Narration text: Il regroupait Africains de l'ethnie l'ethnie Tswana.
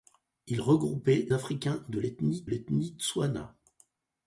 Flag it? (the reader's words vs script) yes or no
no